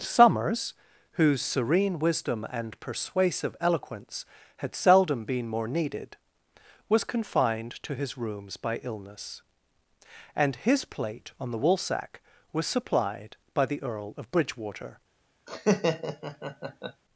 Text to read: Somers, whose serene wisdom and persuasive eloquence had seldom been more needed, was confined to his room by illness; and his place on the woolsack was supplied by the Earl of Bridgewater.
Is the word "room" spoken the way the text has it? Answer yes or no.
no